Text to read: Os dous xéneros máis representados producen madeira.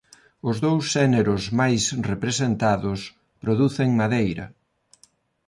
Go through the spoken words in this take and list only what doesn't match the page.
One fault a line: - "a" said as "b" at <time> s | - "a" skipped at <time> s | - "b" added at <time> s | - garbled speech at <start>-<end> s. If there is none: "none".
none